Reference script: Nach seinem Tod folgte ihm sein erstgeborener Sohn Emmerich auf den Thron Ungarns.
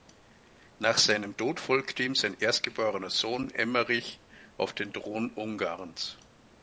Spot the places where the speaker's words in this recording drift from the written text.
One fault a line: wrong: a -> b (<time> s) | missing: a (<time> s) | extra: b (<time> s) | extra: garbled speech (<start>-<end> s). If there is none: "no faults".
no faults